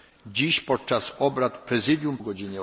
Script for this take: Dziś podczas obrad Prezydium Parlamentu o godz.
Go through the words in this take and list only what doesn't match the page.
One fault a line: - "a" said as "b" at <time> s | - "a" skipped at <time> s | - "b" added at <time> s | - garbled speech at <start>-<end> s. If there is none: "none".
- "Parlamentu" skipped at 2.2 s